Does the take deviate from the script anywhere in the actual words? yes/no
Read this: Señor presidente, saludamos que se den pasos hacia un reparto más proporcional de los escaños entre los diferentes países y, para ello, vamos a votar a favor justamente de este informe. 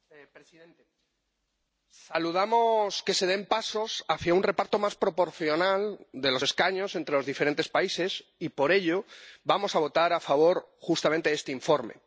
yes